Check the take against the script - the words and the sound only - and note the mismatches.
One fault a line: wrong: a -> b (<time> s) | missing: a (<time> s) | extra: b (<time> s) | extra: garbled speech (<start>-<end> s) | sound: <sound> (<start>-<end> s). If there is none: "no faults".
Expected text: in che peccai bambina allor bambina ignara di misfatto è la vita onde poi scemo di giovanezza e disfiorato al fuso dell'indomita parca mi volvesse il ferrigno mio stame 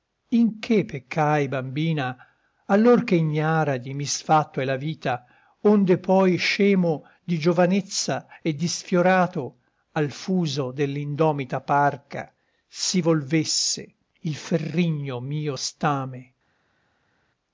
wrong: bambina -> che (3.0 s)
wrong: mi -> si (12.7 s)